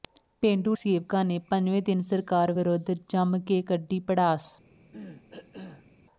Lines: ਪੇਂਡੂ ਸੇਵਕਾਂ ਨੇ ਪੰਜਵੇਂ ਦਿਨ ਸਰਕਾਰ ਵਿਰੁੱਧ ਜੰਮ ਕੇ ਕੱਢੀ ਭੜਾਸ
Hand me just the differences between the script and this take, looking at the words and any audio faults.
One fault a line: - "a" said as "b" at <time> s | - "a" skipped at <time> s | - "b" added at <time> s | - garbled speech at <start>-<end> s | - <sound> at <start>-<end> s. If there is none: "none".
- cough at 4.9-5.9 s